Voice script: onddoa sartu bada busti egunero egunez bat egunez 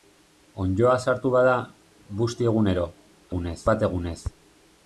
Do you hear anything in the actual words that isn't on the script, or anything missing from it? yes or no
no